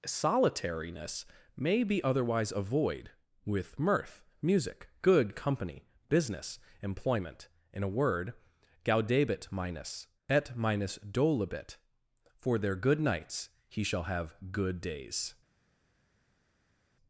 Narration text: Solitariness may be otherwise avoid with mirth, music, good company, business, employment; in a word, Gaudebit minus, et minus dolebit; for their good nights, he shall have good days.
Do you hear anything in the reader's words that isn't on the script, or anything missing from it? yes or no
no